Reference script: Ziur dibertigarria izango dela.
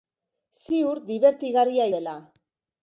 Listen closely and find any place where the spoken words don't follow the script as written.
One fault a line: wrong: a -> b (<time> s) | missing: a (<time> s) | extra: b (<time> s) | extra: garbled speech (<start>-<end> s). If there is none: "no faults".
missing: izango (1.9 s)